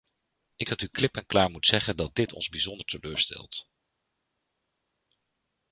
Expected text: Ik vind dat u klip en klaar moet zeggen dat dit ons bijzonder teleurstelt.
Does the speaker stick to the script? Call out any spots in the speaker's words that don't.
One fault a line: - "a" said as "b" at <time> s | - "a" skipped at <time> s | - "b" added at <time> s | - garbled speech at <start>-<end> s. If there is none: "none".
- "vind" skipped at 0.7 s